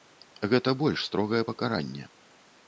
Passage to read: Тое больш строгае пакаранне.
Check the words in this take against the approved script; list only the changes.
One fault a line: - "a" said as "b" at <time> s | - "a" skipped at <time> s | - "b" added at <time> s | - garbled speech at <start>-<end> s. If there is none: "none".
- "Тое" said as "Гэта" at 0.5 s